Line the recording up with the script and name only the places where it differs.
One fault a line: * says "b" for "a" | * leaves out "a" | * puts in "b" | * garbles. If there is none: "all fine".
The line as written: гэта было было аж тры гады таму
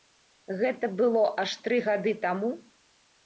* leaves out "было"